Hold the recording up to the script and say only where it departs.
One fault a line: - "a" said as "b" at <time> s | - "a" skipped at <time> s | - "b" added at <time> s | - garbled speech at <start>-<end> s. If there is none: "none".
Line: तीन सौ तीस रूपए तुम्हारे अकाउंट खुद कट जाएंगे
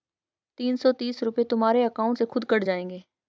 - "से" added at 2.1 s